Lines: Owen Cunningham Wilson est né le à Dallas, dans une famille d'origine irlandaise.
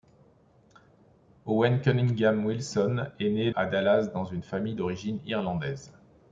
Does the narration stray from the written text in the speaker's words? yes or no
yes